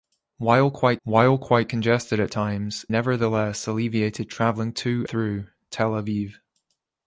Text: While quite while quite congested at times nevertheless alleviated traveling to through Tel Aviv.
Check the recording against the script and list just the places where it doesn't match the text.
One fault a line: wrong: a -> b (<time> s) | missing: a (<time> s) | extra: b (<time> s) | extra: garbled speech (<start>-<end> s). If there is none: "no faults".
no faults